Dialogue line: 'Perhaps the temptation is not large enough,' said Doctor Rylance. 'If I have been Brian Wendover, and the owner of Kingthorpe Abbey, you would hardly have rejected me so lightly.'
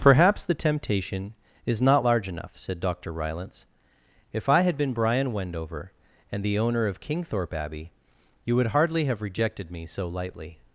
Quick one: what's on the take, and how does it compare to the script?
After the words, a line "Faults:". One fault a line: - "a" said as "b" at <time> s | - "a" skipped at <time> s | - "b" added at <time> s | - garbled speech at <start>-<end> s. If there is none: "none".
'Perhaps the temptation is not large enough,' said Doctor Rylance. 'If I had been Brian Wendover, and the owner of Kingthorpe Abbey, you would hardly have rejected me so lightly.'
Faults:
- "have" said as "had" at 4.6 s